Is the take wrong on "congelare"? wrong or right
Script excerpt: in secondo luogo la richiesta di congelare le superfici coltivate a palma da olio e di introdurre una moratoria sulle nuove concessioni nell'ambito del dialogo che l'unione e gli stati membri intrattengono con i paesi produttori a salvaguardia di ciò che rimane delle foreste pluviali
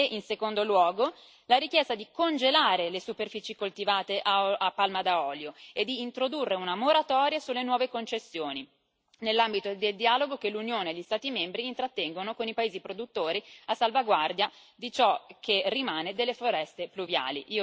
right